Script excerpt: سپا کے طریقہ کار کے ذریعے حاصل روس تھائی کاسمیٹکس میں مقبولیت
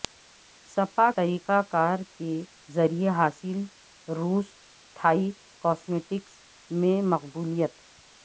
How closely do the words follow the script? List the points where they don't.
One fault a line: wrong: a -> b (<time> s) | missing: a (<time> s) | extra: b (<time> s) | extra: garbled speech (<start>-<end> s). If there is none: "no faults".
missing: کے (1.1 s)